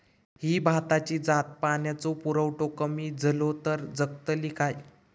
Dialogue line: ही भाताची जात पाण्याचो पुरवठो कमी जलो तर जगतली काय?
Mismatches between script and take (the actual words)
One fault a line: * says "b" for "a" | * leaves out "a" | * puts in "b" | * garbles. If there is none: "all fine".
all fine